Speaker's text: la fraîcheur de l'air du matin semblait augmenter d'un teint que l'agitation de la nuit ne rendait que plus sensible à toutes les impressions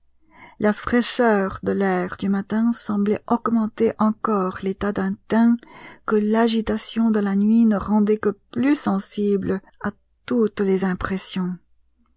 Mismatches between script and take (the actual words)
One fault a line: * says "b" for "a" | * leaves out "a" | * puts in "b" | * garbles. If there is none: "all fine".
* puts in "encore l'état"